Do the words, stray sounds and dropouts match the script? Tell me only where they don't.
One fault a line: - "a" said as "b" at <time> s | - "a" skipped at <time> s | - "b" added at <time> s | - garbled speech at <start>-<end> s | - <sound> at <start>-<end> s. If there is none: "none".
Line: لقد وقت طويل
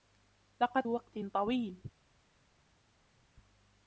none